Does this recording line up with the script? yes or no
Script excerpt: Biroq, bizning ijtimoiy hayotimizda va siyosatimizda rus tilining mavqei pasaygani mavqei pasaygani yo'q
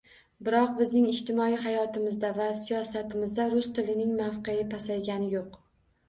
no